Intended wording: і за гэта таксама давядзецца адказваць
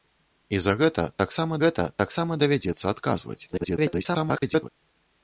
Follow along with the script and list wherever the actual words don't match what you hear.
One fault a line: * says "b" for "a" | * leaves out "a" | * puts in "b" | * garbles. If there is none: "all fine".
* puts in "гэта таксама"
* garbles